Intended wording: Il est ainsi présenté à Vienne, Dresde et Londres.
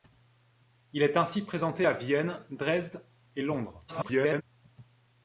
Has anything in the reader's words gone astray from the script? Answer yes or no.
yes